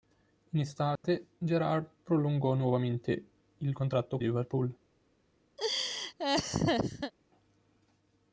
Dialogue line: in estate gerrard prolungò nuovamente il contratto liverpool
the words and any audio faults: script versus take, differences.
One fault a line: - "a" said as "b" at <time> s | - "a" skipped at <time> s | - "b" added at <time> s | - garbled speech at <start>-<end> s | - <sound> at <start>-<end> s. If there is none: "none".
- dropout at 1.0-1.0 s
- laugh at 5.6-7.1 s